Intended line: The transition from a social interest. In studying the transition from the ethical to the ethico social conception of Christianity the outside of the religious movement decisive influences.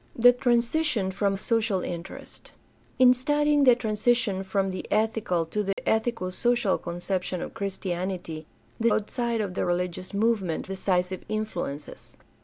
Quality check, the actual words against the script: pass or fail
pass